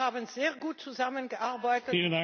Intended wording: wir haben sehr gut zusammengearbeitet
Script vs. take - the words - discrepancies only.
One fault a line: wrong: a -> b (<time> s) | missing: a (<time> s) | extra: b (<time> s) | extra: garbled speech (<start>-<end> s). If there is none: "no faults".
no faults